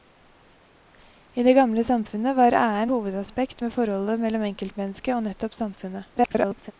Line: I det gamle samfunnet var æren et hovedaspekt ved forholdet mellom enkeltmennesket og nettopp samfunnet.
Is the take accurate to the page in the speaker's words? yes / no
no